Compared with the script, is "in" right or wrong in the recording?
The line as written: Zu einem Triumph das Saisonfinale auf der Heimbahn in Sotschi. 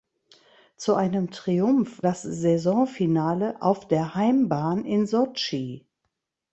right